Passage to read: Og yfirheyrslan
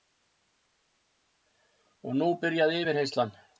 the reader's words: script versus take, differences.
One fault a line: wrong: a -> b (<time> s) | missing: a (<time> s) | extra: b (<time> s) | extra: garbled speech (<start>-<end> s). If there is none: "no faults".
extra: nú byrjaði (2.2 s)